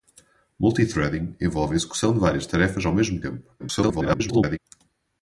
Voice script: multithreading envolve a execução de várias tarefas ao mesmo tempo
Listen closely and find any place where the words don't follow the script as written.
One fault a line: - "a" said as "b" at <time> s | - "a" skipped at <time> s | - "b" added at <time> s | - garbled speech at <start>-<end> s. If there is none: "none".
- garbled speech at 3.6-4.6 s